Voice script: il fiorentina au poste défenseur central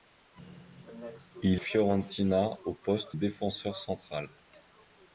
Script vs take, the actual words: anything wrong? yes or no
no